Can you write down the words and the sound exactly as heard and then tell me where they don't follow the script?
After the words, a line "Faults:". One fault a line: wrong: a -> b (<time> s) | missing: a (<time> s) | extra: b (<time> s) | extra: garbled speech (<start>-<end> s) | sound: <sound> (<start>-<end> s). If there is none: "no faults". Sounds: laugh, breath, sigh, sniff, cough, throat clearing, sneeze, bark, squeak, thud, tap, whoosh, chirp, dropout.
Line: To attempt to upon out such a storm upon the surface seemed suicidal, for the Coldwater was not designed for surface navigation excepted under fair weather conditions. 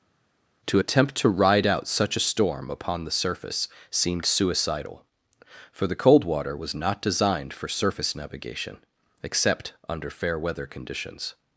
To attempt to ride out such a storm upon the surface seemed suicidal, for the Coldwater was not designed for surface navigation except under fair weather conditions.
Faults:
wrong: upon -> ride (1.3 s)
wrong: excepted -> except (9.2 s)